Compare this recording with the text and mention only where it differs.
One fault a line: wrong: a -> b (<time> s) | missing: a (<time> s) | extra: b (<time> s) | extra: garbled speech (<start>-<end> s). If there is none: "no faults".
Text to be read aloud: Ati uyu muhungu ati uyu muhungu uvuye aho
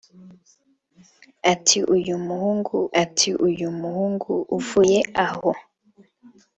no faults